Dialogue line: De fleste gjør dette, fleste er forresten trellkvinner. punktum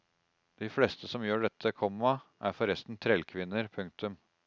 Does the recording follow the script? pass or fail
fail